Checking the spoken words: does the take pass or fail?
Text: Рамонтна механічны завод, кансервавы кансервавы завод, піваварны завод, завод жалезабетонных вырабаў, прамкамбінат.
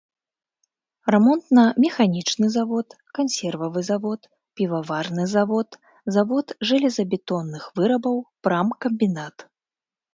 fail